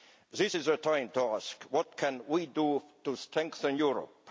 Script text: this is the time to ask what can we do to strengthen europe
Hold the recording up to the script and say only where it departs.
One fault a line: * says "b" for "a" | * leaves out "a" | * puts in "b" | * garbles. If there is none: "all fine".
all fine